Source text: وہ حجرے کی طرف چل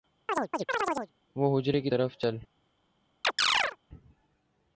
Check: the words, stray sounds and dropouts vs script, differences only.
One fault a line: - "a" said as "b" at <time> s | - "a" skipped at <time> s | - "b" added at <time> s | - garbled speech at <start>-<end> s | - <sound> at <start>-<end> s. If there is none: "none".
- chirp at 0.3-1.1 s
- chirp at 3.2-3.8 s